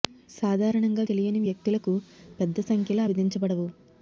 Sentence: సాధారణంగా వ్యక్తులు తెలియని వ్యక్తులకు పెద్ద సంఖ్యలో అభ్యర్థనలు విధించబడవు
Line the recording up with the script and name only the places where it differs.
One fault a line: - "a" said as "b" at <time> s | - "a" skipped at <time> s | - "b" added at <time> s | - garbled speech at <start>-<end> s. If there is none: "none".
- "వ్యక్తులు" skipped at 1.0 s
- "అభ్యర్థనలు" skipped at 3.0 s